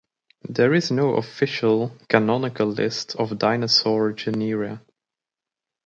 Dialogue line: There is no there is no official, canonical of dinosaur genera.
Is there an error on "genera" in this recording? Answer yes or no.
no